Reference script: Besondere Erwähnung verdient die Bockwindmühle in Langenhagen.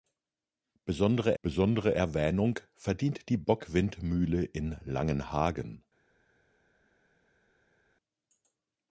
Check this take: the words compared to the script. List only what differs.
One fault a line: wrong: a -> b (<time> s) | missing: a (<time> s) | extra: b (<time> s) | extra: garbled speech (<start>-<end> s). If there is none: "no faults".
extra: besondere (1.4 s)